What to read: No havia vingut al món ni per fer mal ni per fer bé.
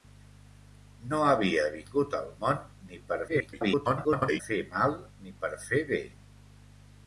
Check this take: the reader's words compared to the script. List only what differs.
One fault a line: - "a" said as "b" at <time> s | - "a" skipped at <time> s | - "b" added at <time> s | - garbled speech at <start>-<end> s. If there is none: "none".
- garbled speech at 3.3-4.4 s